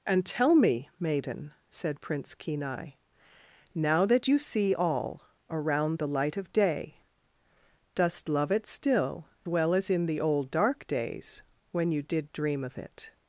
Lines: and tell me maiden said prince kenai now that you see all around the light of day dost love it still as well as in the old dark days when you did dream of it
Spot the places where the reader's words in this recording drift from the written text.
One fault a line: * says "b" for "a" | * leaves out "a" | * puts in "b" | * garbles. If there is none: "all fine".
* leaves out "as"